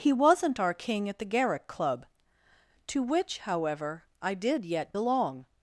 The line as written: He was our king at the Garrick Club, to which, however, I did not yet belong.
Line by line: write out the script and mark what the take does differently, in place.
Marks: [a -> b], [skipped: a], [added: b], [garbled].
He [was -> wasn't] our king at the Garrick Club, to which, however, I did [skipped: not] yet belong.